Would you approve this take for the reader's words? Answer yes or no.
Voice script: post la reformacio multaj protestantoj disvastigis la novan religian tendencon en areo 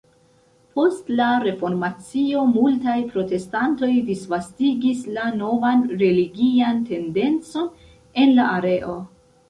no